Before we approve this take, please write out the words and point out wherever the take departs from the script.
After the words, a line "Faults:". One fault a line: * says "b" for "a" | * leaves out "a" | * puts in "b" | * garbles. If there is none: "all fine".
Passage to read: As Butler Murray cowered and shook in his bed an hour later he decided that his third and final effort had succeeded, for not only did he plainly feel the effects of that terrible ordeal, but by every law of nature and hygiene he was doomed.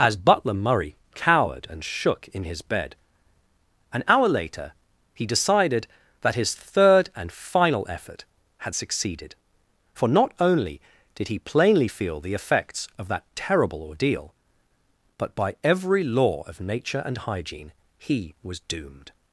As Butler Murray cowered and shook in his bed an hour later he decided that his third and final effort had succeeded, for not only did he plainly feel the effects of that terrible ordeal, but by every law of nature and hygiene he was doomed.
Faults:
all fine